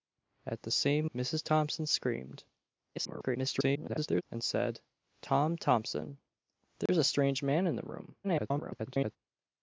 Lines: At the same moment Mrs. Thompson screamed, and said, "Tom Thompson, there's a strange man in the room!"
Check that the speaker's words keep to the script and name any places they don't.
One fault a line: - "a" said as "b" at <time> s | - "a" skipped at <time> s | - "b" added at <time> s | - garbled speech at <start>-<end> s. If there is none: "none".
- "moment" skipped at 1.1 s
- garbled speech at 3.0-4.2 s
- garbled speech at 8.2-9.2 s